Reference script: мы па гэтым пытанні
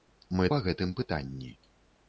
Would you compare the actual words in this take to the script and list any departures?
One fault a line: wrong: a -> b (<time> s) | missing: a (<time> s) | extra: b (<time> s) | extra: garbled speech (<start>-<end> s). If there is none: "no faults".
no faults